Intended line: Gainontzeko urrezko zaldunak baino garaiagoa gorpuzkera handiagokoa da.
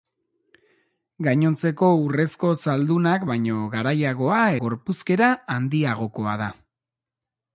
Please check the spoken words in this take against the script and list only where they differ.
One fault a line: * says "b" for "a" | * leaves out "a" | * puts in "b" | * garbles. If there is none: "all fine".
all fine